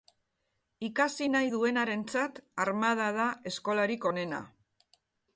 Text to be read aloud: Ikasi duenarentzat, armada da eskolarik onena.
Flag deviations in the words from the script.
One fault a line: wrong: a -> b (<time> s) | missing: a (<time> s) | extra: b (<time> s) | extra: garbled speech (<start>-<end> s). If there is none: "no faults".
extra: nahi (1.3 s)